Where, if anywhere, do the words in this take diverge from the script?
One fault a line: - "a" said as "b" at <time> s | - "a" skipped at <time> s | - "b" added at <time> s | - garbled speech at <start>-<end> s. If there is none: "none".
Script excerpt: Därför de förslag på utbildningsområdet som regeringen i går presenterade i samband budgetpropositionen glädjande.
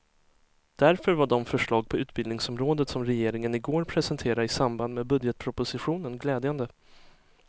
- "var" added at 1.1 s
- "med" added at 4.9 s